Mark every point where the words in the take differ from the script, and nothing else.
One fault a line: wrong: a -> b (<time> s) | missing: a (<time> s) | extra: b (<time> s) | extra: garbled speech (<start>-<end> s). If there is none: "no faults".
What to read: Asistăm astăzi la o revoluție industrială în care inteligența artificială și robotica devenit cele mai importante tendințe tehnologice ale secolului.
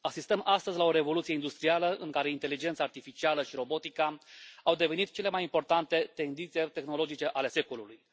extra: au (4.6 s)